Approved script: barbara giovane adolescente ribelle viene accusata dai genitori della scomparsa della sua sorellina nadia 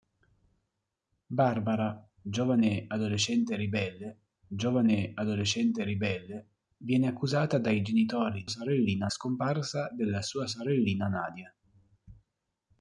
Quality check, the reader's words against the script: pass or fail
fail